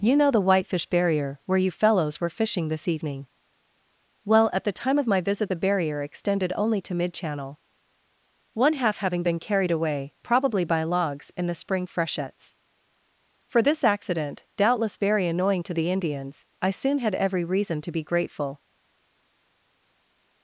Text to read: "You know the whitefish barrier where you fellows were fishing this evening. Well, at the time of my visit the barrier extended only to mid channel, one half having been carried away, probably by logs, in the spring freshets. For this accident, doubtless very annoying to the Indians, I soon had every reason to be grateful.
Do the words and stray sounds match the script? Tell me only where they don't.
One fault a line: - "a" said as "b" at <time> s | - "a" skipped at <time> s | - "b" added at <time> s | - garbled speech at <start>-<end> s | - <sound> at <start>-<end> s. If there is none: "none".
none